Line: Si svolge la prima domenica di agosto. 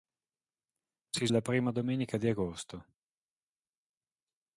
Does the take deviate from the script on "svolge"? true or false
true